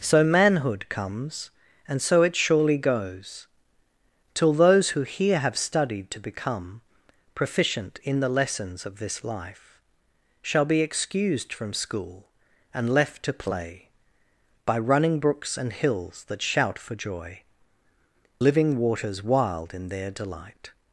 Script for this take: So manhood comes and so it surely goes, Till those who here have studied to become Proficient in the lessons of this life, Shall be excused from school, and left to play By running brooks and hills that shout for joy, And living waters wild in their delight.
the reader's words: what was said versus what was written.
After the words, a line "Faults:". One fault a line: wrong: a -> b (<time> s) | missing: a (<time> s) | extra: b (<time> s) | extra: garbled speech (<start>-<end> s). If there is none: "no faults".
So manhood comes and so it surely goes, Till those who here have studied to become Proficient in the lessons of this life, Shall be excused from school, and left to play By running brooks and hills that shout for joy, Living waters wild in their delight.
Faults:
missing: And (17.4 s)